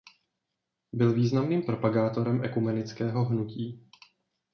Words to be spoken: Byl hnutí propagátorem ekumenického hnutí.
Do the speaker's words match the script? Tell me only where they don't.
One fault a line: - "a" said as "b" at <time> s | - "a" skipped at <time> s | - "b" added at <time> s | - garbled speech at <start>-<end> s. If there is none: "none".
- "hnutí" said as "významným" at 1.1 s